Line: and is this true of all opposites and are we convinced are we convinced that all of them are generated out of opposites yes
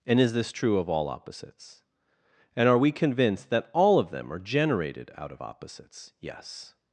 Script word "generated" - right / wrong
right